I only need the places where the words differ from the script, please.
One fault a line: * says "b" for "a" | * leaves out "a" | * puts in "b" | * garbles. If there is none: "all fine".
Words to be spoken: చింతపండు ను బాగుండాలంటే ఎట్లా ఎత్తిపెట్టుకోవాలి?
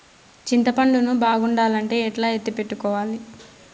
all fine